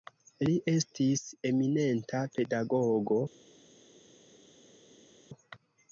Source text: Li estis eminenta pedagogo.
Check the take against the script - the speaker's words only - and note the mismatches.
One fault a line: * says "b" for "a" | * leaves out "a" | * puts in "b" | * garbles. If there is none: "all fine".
all fine